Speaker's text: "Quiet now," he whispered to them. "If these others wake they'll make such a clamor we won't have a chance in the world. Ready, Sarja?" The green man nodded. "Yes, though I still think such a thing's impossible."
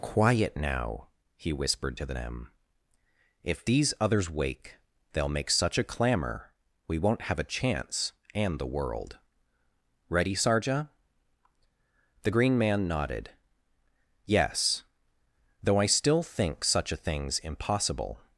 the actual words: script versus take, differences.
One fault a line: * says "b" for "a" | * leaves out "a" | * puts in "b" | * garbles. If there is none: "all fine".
* says "and" for "in"